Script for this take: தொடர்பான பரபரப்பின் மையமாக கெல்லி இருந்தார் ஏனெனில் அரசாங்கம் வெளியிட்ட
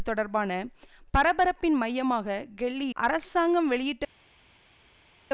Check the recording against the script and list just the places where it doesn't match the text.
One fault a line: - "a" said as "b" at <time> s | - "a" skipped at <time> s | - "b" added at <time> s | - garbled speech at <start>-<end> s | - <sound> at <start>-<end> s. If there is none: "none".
- "இருந்தார் ஏனெனில்" skipped at 2.9 s